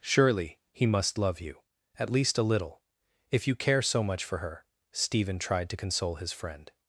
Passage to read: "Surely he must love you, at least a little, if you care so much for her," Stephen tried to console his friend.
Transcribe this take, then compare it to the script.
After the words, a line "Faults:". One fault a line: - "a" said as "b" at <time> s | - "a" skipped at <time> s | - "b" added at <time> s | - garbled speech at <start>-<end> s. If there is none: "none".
"Surely he must love you, at least a little, if you care so much for her," Stephen tried to console his friend.
Faults:
none